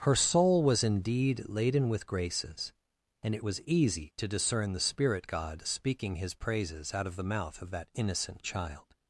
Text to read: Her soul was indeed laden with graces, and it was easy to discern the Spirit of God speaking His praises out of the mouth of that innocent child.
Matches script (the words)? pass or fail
fail